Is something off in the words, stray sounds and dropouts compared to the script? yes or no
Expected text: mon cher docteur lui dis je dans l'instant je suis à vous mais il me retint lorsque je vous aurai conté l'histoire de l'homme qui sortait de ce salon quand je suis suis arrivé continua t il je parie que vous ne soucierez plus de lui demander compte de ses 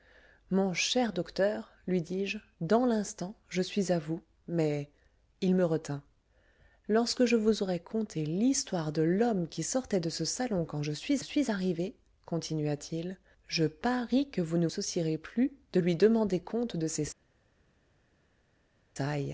no